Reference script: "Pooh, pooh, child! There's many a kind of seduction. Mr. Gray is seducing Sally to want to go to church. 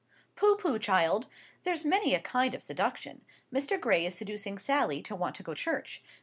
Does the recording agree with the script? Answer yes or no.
no